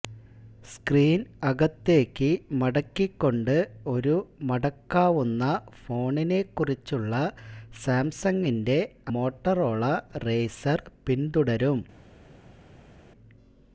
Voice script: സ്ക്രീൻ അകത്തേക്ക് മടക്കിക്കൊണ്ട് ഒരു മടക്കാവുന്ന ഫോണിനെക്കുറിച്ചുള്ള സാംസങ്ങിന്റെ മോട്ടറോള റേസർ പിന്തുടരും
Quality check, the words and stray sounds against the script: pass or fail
pass